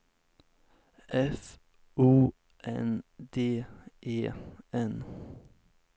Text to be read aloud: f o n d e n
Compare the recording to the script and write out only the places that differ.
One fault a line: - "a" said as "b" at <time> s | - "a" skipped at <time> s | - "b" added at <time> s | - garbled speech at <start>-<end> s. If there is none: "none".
none